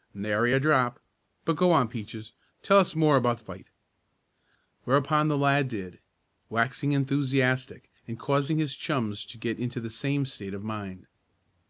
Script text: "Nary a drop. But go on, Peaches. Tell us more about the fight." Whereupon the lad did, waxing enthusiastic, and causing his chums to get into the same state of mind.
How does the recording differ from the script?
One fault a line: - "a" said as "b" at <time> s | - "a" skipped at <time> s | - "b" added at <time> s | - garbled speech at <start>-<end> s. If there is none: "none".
none